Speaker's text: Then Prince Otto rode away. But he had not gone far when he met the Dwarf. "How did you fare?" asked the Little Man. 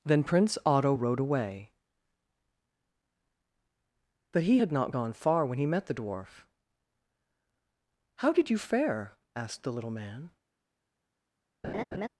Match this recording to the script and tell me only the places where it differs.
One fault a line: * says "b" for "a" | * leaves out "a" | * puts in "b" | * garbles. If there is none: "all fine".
all fine